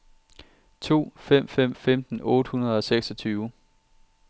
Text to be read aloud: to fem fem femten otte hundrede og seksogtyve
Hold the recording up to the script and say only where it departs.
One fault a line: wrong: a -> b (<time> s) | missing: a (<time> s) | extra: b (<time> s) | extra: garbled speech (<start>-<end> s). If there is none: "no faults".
no faults